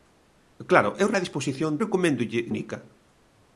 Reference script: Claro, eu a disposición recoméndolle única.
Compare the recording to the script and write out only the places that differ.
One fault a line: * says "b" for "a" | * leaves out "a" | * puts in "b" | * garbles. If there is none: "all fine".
all fine